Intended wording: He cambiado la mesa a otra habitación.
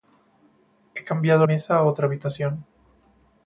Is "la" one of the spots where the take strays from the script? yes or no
yes